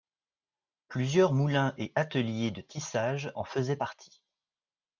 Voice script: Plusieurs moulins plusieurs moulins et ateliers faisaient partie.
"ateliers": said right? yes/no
no